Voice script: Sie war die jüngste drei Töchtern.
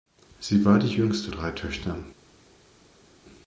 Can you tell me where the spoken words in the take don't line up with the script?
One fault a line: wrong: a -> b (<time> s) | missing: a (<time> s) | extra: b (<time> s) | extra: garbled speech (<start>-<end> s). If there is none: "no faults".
no faults